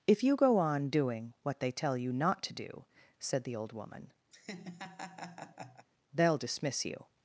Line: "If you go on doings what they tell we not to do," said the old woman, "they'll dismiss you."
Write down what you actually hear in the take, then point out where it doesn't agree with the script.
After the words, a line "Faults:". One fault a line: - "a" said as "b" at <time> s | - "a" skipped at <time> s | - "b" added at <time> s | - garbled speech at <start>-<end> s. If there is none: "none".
"If you go on doing what they tell you not to do," said the old woman, "they'll dismiss you."
Faults:
- "doings" said as "doing" at 0.9 s
- "we" said as "you" at 1.9 s